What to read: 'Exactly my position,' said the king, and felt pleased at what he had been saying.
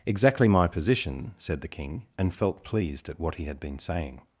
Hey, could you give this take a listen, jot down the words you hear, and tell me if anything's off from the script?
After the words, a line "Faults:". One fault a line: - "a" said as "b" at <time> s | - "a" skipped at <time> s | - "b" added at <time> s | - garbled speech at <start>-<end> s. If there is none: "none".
'Exactly my position,' said the king, and felt pleased at what he had been saying.
Faults:
none